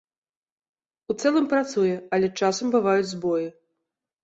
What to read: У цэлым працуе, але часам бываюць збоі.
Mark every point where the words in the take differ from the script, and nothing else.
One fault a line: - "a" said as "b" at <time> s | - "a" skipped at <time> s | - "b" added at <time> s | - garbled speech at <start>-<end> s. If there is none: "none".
none